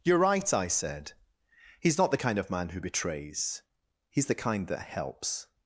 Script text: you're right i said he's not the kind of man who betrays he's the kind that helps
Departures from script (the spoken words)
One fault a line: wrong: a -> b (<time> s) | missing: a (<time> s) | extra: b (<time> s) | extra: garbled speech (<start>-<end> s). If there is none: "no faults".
no faults